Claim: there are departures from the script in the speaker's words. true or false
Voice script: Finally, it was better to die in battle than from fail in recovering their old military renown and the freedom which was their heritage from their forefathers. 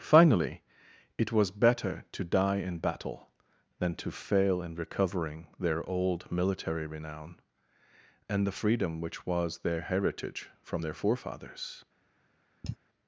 true